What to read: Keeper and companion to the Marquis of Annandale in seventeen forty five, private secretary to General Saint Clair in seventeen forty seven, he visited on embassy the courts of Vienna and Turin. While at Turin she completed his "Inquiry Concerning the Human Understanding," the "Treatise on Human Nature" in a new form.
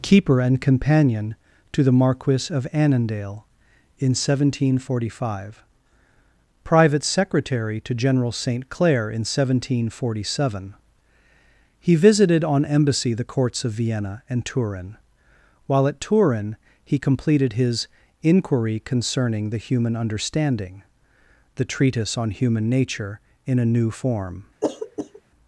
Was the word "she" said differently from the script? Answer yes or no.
yes